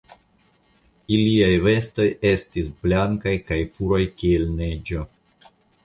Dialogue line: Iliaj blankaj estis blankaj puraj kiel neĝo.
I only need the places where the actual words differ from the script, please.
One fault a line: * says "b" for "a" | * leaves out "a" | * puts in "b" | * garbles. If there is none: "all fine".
* says "vestoj" for "blankaj"
* puts in "kaj"